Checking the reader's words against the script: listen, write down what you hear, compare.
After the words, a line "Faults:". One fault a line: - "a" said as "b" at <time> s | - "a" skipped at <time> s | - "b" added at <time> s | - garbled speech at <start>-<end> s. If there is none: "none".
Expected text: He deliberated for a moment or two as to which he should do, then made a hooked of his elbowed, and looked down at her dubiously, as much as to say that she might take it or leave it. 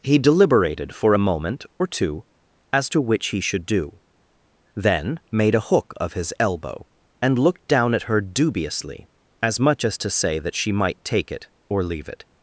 He deliberated for a moment or two as to which he should do, then made a hook of his elbow, and looked down at her dubiously, as much as to say that she might take it or leave it.
Faults:
- "hooked" said as "hook" at 5.6 s
- "elbowed" said as "elbow" at 6.4 s